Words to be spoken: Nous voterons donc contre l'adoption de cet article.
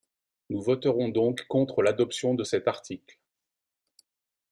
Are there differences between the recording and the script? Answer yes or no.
no